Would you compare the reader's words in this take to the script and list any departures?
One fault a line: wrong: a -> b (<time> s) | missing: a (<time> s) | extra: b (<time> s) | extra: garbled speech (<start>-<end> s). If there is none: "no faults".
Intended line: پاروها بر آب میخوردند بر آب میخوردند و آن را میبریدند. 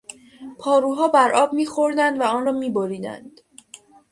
missing: بر آب میخوردند (2.2 s)